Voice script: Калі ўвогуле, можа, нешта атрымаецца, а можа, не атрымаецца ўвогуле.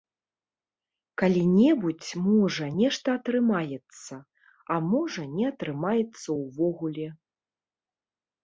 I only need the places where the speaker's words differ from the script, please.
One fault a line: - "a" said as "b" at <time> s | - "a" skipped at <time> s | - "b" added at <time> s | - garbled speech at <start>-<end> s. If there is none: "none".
- "ўвогуле" said as "небудзь" at 1.6 s